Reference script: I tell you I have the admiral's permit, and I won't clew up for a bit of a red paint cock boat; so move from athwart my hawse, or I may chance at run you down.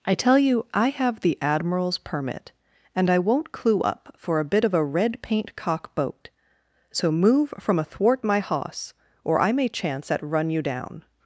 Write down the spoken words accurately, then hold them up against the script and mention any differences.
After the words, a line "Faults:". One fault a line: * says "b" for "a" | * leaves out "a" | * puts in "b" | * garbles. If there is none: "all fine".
I tell you I have the admiral's permit, and I won't clew up for a bit of a red paint cock boat; so move from athwart my hawse, or I may chance at run you down.
Faults:
all fine